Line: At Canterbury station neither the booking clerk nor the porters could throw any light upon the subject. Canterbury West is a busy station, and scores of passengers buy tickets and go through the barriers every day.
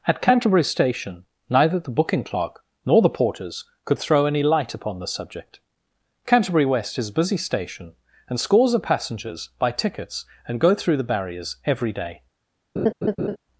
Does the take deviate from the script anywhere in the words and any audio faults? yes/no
yes